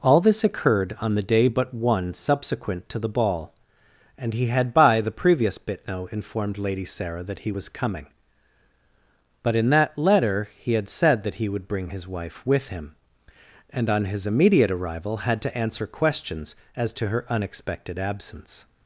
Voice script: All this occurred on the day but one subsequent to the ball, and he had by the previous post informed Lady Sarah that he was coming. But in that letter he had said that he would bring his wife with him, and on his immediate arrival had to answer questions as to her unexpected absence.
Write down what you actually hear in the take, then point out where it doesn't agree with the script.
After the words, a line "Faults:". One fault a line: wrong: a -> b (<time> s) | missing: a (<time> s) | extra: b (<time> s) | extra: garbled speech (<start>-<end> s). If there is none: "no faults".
All this occurred on the day but one subsequent to the ball, and he had by the previous bitno informed Lady Sarah that he was coming. But in that letter he had said that he would bring his wife with him, and on his immediate arrival had to answer questions as to her unexpected absence.
Faults:
wrong: post -> bitno (5.6 s)